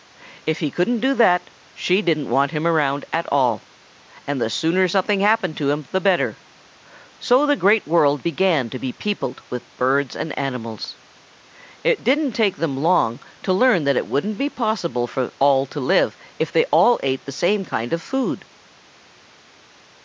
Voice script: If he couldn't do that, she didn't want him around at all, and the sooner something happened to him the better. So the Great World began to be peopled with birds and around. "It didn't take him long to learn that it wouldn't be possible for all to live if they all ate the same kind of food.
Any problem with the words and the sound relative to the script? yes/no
yes